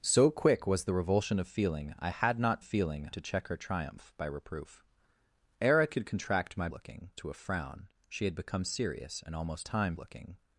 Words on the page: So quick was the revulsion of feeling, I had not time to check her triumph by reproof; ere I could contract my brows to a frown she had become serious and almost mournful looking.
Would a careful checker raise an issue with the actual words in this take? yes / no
yes